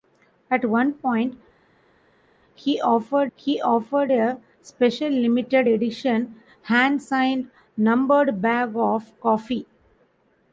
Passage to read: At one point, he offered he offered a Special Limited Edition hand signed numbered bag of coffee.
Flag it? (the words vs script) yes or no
no